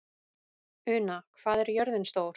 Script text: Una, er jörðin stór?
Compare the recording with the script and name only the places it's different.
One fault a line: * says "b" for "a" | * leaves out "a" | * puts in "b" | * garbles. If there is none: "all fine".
* puts in "hvað"